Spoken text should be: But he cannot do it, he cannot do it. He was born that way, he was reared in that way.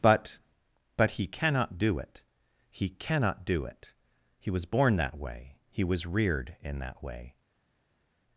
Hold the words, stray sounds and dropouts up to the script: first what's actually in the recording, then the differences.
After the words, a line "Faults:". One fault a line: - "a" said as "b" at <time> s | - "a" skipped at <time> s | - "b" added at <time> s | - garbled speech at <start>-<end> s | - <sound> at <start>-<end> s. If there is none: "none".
But but he cannot do it, he cannot do it. He was born that way, he was reared in that way.
Faults:
- "but" added at 1.0 s